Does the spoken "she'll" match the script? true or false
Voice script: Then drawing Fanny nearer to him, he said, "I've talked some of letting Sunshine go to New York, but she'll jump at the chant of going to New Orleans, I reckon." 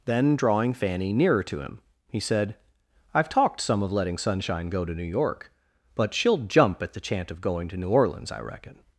true